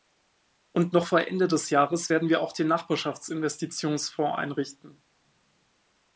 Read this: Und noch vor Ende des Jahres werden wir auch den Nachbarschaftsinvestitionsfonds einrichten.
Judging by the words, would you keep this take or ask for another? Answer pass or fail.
pass